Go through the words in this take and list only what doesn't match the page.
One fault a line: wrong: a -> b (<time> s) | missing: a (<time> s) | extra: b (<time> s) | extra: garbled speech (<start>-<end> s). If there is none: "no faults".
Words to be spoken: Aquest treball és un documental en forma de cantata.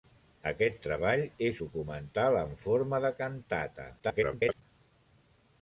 missing: un (1.6 s)
extra: garbled speech (4.0-4.6 s)